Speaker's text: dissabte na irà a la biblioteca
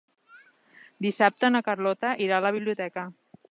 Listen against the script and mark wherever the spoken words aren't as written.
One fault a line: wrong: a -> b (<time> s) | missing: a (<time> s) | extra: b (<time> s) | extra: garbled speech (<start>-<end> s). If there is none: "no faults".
extra: carlota (1.7 s)